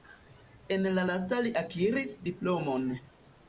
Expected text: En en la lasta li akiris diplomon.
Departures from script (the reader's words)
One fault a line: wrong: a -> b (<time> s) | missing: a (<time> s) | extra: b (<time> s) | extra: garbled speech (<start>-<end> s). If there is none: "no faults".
missing: en (0.9 s)